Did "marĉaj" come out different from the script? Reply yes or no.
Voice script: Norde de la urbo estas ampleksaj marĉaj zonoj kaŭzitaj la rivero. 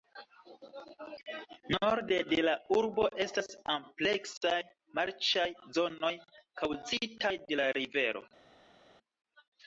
no